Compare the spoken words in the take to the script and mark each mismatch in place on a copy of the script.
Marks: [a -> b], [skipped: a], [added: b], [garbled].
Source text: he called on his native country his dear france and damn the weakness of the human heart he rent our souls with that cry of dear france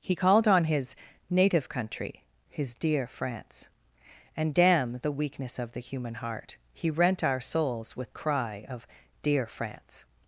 he called on his native country his dear france and damn the weakness of the human heart he rent our souls with [skipped: that] cry of dear france